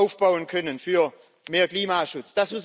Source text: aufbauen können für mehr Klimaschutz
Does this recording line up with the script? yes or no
yes